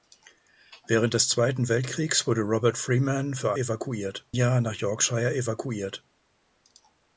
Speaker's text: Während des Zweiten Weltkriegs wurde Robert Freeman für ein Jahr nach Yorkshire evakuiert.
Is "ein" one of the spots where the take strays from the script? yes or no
yes